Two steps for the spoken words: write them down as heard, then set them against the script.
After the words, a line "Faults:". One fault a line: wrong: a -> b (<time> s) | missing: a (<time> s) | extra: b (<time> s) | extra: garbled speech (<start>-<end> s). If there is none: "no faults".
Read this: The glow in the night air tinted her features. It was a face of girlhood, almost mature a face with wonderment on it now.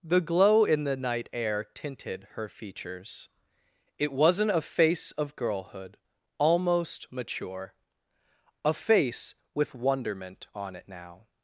The glow in the night air tinted her features. It wasn't a face of girlhood, almost mature a face with wonderment on it now.
Faults:
wrong: was -> wasn't (4.1 s)